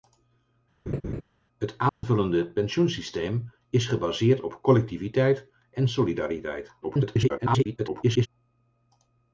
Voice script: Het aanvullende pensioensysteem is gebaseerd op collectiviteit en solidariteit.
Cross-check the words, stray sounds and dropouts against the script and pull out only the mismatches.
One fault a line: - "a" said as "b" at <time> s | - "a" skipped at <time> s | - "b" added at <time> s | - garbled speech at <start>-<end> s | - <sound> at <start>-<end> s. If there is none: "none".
- laugh at 0.9-1.2 s
- dropout at 1.9-2.0 s
- garbled speech at 6.8-8.3 s